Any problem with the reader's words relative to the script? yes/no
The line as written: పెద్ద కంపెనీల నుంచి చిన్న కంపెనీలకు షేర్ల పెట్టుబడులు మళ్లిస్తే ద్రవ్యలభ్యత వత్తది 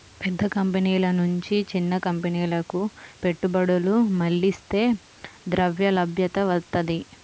yes